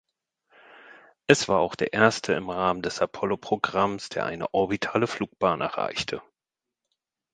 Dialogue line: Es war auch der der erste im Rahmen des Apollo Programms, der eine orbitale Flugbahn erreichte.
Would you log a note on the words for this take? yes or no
yes